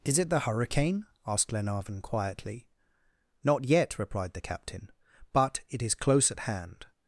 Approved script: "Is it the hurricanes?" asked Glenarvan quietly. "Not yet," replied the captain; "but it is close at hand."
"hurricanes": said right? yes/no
no